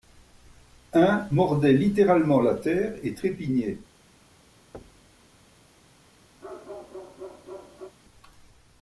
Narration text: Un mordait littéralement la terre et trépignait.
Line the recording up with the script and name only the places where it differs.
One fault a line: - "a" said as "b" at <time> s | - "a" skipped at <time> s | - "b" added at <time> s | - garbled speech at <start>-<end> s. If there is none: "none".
none